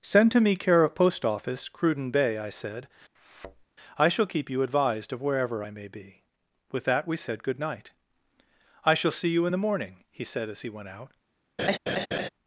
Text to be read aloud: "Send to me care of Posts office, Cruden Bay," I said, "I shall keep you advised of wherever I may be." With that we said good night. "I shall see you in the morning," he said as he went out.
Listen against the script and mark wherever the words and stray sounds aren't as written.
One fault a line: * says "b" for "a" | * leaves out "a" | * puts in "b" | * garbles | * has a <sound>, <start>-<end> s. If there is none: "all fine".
* says "Post" for "Posts"
* has a thud, 3.1-3.6 s
* has a laugh, 11.6-12.3 s